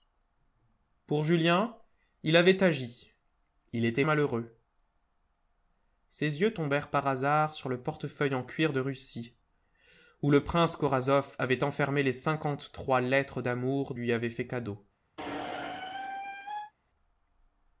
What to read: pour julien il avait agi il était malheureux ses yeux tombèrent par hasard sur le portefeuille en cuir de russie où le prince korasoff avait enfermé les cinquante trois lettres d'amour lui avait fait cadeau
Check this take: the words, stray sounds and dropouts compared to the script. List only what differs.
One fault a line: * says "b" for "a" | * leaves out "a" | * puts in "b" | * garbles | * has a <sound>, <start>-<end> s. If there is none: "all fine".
* has a squeak, 15.2-16.7 s